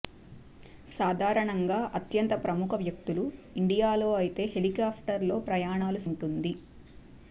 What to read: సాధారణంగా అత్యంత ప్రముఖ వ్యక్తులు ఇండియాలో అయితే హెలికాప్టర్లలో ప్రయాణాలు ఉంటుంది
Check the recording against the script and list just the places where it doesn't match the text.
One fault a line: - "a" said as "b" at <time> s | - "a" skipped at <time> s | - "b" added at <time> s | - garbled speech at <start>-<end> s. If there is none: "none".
none